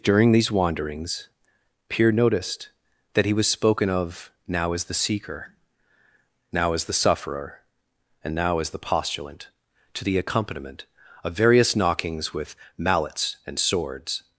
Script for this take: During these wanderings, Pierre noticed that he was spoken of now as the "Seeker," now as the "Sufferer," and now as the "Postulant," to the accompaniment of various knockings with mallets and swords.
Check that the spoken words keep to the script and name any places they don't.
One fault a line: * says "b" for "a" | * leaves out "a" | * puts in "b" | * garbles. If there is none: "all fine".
all fine